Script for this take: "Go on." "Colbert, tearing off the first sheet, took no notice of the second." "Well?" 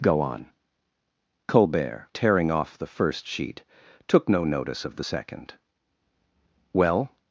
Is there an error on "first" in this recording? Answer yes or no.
no